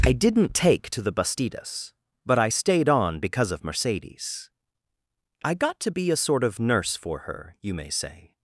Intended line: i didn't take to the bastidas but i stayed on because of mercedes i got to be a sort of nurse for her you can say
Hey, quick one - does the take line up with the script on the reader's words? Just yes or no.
no